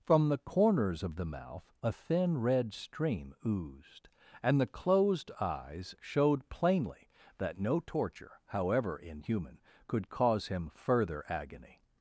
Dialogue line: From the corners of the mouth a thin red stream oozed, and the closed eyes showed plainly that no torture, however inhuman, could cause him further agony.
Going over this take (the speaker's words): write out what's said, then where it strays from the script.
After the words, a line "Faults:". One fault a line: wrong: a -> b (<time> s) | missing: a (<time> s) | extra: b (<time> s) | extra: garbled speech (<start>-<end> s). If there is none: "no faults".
From the corners of the mouth a thin red stream oozed, and the closed eyes showed plainly that no torture, however inhuman, could cause him further agony.
Faults:
no faults